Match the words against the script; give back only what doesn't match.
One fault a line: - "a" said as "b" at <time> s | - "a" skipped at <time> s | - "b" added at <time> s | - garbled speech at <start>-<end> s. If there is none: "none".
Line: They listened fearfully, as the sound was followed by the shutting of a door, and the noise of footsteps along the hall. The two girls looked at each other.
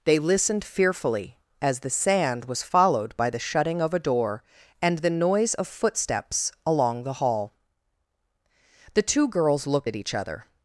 - "sound" said as "sand" at 1.9 s